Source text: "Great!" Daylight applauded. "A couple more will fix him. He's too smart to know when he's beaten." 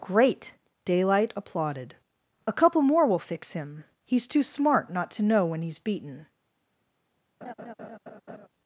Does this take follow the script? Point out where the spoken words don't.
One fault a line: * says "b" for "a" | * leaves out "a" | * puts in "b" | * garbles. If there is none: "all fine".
* puts in "not"